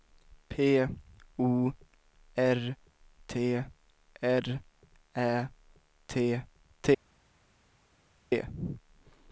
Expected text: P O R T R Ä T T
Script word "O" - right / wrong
right